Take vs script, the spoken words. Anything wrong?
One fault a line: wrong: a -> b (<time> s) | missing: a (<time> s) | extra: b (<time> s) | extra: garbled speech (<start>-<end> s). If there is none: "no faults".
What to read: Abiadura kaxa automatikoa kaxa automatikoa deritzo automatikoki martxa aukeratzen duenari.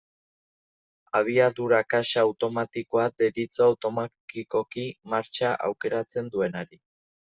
missing: kaxa automatikoa (3.1 s)